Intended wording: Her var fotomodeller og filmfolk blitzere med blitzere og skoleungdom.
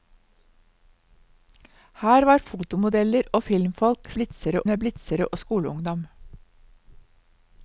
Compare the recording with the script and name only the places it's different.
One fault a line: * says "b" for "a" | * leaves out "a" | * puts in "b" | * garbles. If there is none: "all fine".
all fine